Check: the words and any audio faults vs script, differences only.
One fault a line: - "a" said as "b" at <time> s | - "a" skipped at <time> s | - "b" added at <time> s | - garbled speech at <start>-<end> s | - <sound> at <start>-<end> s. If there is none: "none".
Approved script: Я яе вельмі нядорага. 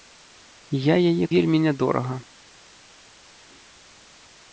none